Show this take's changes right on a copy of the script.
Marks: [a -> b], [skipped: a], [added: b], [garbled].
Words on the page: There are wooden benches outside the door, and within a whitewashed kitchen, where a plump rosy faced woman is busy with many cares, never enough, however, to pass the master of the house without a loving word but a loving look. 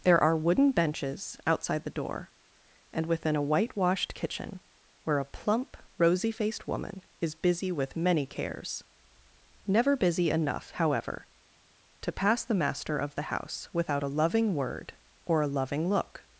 There are wooden benches outside the door, and within a whitewashed kitchen, where a plump rosy faced woman is busy with many cares, never [added: busy] enough, however, to pass the master of the house without a loving word [but -> or] a loving look.